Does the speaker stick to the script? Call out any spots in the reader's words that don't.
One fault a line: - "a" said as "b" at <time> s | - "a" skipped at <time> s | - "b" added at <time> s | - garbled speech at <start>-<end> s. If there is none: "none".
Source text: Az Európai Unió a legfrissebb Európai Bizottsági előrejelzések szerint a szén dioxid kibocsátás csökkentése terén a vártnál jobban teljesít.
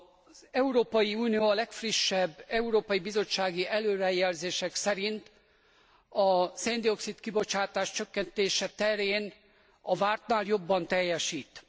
none